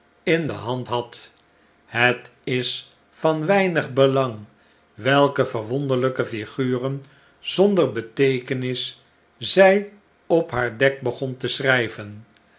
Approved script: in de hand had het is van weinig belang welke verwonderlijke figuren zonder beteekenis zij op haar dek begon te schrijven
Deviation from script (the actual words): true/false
false